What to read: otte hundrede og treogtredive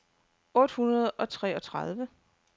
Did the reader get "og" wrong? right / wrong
right